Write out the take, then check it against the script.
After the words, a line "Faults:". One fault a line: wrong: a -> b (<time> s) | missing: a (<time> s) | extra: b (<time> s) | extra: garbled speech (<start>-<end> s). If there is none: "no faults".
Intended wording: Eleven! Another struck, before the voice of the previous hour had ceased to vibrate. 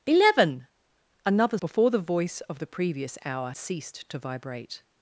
Eleven! Another before the voice of the previous hour ceased to vibrate.
Faults:
missing: struck (1.6 s)
missing: had (3.5 s)